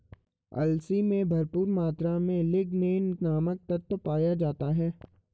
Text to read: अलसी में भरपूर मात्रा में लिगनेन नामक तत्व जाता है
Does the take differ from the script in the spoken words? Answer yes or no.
yes